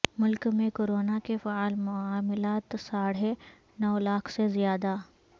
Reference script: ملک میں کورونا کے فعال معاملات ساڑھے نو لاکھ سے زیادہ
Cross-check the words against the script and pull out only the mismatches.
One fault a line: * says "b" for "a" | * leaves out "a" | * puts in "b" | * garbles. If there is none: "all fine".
all fine